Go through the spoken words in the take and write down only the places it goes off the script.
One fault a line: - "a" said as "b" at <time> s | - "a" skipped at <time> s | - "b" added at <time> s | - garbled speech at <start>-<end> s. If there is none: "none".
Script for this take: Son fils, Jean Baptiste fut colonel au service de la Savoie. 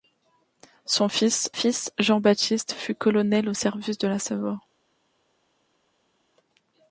- "fils" added at 1.5 s